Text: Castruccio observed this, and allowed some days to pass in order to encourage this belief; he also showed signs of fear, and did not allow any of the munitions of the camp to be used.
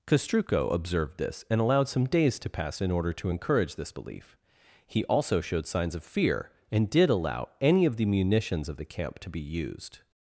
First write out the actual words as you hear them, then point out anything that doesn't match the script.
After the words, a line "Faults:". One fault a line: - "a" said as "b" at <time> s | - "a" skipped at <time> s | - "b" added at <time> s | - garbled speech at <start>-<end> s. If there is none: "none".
Castruccio observed this, and allowed some days to pass in order to encourage this belief; he also showed signs of fear, and did allow any of the munitions of the camp to be used.
Faults:
- "not" skipped at 7.1 s